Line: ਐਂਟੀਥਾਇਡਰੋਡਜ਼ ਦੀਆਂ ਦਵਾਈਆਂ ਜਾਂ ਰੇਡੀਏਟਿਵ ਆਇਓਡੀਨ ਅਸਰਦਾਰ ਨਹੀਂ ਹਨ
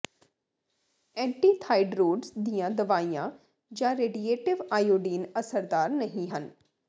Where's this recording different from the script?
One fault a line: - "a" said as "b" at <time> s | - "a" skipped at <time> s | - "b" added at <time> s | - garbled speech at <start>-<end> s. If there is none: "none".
none